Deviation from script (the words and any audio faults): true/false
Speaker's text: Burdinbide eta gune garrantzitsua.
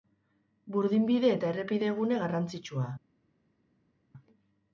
true